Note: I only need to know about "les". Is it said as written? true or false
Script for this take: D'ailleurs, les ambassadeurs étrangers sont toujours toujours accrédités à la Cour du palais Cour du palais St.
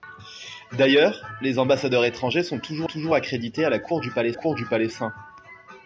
true